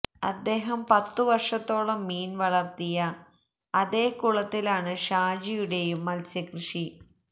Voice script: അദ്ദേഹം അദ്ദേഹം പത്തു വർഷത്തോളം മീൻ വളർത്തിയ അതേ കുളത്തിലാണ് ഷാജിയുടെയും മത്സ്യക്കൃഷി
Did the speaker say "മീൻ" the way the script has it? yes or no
yes